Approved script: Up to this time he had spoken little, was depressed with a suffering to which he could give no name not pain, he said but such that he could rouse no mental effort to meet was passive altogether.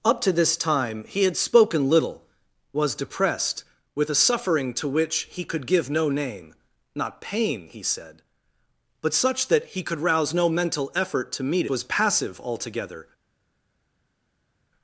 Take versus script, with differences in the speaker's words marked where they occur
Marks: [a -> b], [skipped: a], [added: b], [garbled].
Up to this time he had spoken little, was depressed with a suffering to which he could give no name not pain, he said but such that he could rouse no mental effort to meet was passive altogether.